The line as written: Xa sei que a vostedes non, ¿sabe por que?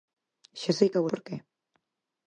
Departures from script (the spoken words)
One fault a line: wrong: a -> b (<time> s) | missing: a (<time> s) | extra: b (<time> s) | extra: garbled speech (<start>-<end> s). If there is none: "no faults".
missing: vostedes non sabe (1.1 s)